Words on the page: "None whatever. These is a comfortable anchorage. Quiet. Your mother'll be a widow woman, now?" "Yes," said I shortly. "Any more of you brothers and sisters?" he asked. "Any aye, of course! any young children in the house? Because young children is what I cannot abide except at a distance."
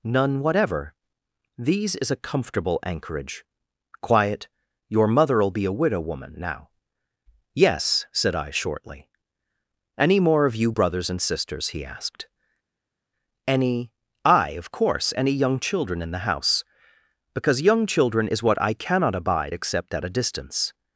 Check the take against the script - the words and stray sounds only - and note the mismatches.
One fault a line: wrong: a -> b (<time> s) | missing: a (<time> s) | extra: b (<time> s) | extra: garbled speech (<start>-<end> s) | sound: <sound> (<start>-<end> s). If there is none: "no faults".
no faults